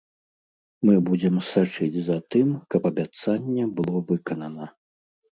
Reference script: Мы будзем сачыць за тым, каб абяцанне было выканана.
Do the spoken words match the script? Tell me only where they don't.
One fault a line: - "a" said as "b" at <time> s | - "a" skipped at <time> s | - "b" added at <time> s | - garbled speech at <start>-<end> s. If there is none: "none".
none